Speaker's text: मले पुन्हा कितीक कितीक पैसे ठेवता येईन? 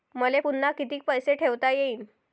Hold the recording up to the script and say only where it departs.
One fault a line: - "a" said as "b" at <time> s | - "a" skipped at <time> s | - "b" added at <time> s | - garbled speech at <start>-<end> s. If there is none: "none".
- "कितीक" skipped at 1.0 s